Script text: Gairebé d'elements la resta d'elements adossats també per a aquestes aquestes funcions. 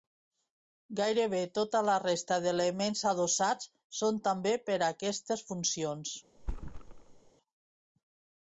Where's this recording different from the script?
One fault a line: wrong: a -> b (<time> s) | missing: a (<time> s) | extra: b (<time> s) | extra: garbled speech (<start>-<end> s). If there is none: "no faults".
wrong: d'elements -> tota (1.6 s)
extra: són (4.0 s)
missing: aquestes (5.5 s)